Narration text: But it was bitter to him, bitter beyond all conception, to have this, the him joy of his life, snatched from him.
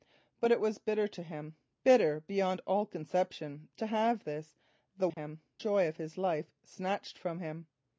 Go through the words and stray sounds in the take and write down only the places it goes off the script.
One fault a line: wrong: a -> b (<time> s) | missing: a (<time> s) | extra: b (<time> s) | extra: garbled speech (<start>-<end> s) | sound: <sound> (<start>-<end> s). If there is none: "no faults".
sound: dropout (5.1-5.2 s)